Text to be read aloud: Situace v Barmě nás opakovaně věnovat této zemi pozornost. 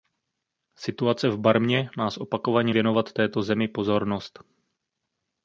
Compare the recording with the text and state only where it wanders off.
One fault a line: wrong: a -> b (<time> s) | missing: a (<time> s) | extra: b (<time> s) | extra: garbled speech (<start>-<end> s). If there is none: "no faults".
no faults